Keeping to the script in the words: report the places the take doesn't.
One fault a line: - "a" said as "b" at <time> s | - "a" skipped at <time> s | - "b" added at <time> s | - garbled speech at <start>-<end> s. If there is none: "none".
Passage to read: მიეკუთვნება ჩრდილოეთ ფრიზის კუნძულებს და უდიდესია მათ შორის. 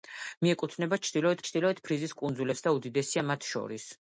- "ჩრდილოეთ" added at 1.5 s